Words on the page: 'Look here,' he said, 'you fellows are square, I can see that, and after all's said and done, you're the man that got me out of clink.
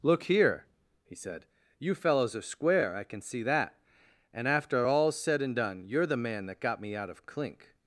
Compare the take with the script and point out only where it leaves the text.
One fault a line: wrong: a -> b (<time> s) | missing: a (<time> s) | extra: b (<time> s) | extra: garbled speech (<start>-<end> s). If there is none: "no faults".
no faults